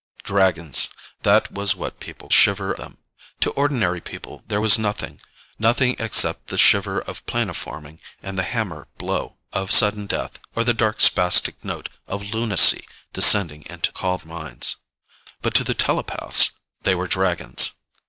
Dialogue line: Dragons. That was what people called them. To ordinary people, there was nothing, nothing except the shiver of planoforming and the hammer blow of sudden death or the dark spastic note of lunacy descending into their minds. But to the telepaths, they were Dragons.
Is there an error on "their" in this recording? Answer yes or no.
yes